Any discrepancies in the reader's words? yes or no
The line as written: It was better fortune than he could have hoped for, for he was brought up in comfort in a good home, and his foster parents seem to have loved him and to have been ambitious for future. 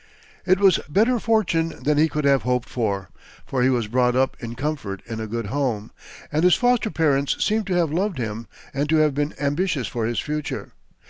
yes